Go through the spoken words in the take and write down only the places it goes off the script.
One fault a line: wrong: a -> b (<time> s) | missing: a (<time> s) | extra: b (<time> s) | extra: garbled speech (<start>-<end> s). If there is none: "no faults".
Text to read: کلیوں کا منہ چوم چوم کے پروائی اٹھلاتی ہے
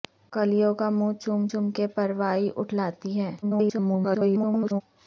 extra: garbled speech (3.4-4.8 s)